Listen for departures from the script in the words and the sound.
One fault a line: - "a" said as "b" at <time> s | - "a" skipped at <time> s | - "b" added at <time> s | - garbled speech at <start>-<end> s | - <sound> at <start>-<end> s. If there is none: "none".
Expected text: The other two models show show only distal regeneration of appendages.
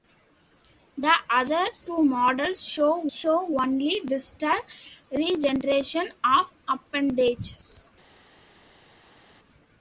none